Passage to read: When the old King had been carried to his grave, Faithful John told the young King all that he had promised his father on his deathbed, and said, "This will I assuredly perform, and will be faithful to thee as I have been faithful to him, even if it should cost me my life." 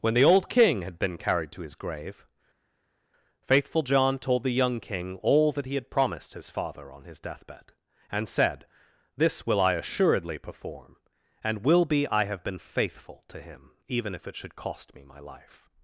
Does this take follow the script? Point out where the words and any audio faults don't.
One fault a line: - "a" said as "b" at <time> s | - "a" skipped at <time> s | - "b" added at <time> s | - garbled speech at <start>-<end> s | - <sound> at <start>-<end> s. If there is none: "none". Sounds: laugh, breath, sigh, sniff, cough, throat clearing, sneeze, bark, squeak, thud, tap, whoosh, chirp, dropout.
- "faithful to thee as" skipped at 12.1 s